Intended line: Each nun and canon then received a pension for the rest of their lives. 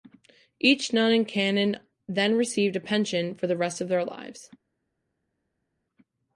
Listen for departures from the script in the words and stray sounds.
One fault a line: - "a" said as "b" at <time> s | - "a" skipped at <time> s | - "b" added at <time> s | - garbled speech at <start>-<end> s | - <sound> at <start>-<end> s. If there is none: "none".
none